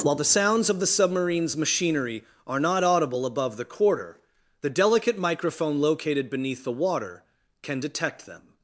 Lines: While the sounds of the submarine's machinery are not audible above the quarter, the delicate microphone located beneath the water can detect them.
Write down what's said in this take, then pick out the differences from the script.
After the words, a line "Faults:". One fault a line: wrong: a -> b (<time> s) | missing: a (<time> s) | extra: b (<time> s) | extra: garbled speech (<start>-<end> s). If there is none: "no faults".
While the sounds of the submarine's machinery are not audible above the quarter, the delicate microphone located beneath the water can detect them.
Faults:
no faults